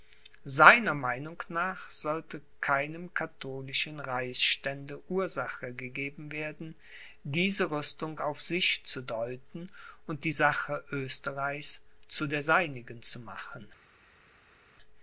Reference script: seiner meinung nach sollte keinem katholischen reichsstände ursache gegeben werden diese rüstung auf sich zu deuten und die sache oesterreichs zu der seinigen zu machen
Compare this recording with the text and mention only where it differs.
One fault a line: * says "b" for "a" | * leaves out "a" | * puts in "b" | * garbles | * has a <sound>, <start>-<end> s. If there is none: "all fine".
all fine